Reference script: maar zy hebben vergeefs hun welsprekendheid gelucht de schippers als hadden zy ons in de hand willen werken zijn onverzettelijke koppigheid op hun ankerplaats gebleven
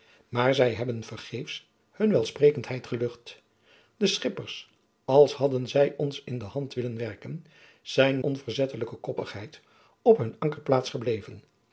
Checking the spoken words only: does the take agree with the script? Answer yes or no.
yes